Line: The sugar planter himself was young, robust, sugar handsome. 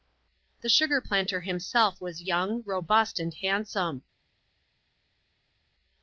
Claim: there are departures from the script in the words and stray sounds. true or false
true